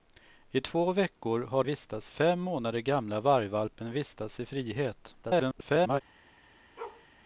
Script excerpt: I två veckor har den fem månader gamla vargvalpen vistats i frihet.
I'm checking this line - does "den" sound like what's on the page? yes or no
no